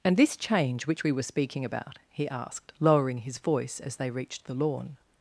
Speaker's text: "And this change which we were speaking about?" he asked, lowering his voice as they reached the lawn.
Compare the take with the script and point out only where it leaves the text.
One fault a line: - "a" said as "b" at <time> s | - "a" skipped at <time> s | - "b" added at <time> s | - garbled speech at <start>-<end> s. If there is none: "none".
none